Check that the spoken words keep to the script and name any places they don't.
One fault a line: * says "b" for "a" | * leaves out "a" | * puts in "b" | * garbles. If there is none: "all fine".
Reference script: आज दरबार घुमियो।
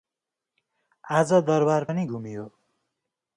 * puts in "पनि"